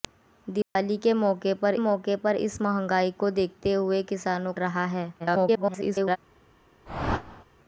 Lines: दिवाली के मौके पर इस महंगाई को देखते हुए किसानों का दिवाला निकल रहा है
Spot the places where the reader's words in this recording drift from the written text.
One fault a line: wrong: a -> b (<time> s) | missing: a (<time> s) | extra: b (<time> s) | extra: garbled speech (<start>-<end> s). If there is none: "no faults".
extra: मौके पर (1.8 s)
missing: का दिवाला निकल (4.5 s)
extra: garbled speech (5.2-6.2 s)